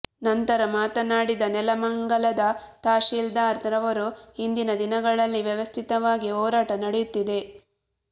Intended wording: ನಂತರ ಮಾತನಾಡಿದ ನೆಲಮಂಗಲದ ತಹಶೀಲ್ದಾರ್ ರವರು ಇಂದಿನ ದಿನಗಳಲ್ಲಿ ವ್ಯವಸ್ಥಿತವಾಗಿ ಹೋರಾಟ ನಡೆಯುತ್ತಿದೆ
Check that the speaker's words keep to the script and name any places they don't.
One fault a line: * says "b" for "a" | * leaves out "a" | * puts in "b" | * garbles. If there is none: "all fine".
all fine